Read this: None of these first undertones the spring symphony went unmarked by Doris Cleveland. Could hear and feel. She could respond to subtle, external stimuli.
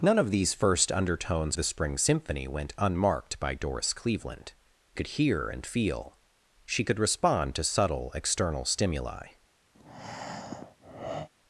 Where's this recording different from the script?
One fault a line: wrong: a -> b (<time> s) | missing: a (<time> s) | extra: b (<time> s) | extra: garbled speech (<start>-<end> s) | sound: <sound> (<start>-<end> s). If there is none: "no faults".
sound: breath (9.7-11.3 s)